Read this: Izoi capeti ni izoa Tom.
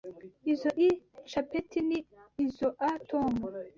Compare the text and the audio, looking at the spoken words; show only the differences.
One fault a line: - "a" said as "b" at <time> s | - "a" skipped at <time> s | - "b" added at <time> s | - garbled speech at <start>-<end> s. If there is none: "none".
none